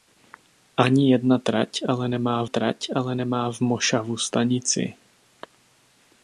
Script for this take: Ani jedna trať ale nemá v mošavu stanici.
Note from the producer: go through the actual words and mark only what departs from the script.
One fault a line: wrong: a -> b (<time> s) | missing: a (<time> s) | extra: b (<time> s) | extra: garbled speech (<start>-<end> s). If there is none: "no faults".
extra: trať ale nemá (2.4 s)